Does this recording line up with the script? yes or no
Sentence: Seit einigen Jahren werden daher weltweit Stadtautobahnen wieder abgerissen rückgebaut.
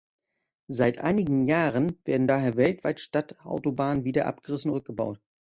yes